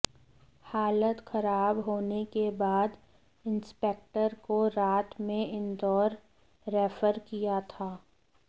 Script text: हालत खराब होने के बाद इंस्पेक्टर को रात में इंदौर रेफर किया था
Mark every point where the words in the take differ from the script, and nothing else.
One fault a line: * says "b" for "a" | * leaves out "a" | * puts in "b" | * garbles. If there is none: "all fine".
all fine